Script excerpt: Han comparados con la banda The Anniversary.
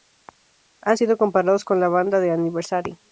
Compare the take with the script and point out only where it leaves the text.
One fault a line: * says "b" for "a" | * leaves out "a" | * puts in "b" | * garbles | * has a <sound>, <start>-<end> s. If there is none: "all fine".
* puts in "sido"